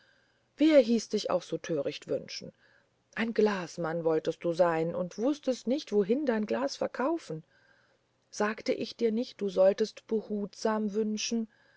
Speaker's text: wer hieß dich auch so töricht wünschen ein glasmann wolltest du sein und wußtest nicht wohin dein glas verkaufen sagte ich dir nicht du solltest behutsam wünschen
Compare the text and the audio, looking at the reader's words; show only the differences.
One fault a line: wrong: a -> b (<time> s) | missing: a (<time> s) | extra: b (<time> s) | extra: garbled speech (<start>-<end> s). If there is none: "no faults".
no faults